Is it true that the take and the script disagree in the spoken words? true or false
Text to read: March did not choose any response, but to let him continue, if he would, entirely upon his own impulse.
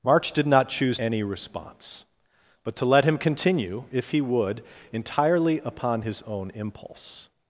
false